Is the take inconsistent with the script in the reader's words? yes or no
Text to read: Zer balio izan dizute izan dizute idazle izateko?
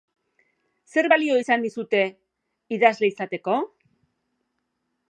yes